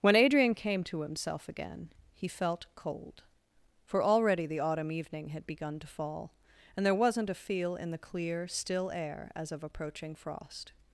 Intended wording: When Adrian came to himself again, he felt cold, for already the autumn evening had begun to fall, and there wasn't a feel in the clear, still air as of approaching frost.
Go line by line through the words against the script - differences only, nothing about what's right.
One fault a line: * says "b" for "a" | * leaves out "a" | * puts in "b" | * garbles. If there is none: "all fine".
all fine